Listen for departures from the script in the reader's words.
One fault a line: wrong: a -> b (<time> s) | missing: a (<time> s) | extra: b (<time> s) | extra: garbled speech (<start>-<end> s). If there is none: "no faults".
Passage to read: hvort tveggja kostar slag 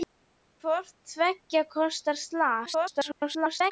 extra: garbled speech (2.6-3.7 s)